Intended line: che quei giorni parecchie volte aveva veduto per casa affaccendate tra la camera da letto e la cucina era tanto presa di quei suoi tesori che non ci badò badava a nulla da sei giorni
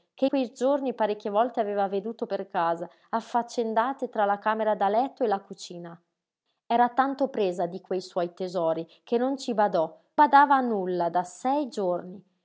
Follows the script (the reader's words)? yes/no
yes